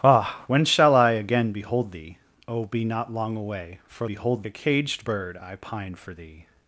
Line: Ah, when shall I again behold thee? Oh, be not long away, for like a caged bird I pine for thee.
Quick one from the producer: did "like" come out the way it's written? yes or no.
no